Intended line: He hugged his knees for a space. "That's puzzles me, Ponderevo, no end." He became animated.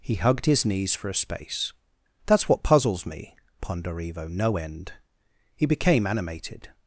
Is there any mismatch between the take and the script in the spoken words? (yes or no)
yes